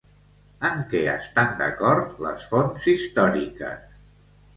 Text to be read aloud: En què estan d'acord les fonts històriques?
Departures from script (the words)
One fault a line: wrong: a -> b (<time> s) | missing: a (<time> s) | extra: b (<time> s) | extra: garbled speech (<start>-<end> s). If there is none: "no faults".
no faults